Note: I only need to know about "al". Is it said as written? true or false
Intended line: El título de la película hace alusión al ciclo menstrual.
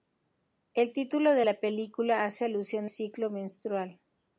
false